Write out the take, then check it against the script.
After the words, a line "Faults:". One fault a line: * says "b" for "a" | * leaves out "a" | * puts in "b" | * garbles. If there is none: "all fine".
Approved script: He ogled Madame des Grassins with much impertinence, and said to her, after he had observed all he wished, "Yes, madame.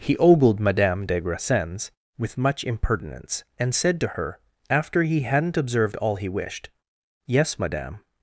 He ogled Madame des Grassins with much impertinence, and said to her, after he hadn't observed all he wished, "Yes, madame.
Faults:
* says "hadn't" for "had"